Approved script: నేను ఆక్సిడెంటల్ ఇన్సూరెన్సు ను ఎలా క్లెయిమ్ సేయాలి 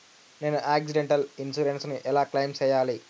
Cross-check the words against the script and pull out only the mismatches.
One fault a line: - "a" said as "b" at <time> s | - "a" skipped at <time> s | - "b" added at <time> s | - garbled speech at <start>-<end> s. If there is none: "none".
none